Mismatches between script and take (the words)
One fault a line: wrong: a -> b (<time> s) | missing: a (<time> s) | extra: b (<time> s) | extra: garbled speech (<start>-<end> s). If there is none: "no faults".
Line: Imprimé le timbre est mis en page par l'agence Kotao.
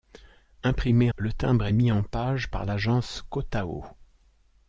no faults